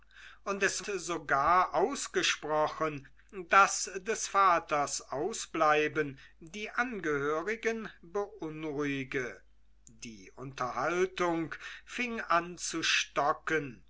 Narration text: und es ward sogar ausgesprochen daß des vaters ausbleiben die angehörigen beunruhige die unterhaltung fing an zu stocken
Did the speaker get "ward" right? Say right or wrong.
wrong